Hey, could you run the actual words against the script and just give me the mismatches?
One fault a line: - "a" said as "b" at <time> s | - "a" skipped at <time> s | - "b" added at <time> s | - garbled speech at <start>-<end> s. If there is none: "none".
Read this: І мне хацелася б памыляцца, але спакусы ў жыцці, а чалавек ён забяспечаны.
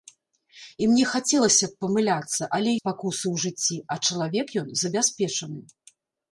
none